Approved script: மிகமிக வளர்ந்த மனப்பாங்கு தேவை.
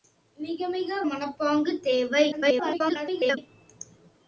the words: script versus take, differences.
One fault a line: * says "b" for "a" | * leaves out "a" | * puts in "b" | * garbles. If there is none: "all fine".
* leaves out "வளர்ந்த"
* garbles